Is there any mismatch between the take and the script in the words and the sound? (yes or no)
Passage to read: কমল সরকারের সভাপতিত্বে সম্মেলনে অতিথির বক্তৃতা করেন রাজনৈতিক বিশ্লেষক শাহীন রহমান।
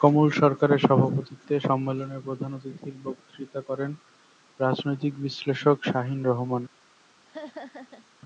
yes